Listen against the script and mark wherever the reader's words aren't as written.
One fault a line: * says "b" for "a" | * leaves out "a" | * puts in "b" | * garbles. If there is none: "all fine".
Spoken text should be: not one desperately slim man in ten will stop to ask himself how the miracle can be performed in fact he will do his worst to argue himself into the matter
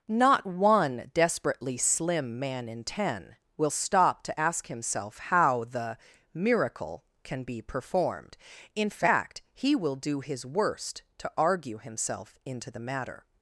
all fine